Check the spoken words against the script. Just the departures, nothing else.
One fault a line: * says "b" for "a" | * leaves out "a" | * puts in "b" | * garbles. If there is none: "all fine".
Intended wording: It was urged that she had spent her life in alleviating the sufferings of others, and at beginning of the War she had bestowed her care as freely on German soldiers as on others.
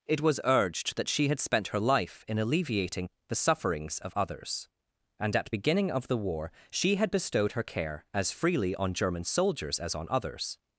all fine